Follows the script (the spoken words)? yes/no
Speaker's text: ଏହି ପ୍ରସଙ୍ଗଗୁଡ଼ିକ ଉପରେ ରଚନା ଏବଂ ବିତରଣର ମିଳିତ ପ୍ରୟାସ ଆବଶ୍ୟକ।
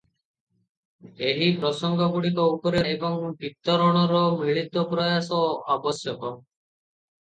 no